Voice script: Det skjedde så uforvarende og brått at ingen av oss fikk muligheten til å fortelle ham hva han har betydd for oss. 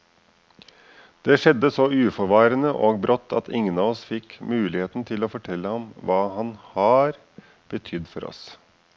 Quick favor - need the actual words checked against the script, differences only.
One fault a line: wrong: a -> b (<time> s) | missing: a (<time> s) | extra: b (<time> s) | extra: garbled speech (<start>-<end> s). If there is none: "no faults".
no faults